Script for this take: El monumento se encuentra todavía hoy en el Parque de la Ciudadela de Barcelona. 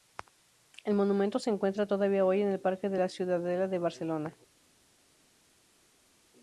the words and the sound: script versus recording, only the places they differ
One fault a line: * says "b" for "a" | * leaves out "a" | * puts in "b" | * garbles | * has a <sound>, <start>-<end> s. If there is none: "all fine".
all fine